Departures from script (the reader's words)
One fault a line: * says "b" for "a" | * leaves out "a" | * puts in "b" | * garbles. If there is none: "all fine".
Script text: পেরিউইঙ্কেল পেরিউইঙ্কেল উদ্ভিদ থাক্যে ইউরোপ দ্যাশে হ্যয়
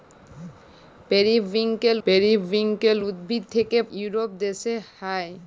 all fine